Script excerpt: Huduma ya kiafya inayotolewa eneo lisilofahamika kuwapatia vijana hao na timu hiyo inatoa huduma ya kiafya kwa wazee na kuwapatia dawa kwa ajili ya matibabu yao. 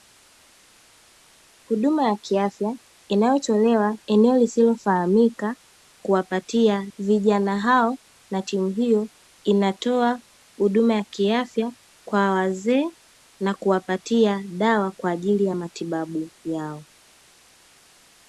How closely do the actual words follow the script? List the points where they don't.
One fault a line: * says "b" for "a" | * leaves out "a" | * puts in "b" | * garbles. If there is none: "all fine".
all fine